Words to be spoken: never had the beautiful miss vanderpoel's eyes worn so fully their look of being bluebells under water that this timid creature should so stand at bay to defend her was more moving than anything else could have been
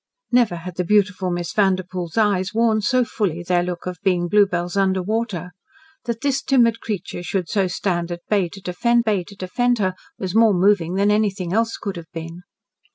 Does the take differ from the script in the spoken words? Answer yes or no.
yes